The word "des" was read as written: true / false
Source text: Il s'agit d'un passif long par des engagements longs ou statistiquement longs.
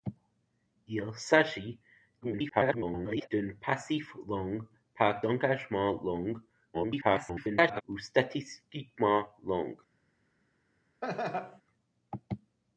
false